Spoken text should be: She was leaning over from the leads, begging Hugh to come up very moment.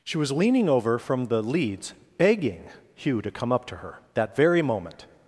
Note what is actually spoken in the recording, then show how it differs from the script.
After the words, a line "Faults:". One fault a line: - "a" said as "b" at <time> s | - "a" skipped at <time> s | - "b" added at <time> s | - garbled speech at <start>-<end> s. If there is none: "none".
She was leaning over from the leads, begging Hugh to come up to her, that very moment.
Faults:
- "to her that" added at 3.7 s